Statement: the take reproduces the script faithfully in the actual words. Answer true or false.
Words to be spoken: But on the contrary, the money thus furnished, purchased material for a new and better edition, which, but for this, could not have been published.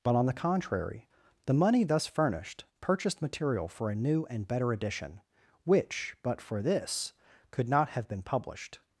true